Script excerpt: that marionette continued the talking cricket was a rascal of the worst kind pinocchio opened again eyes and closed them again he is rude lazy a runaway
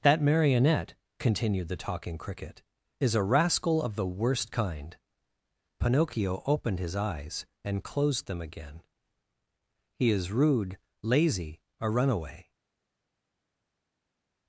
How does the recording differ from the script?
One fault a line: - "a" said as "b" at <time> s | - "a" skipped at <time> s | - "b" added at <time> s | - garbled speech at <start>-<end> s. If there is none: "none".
- "was" said as "is" at 3.0 s
- "again" said as "his" at 6.8 s